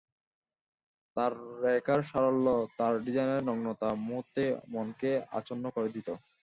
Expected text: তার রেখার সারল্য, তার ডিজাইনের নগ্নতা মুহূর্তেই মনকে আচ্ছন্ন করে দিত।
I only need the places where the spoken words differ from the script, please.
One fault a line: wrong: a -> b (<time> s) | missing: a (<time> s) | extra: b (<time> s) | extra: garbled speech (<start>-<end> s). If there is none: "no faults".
no faults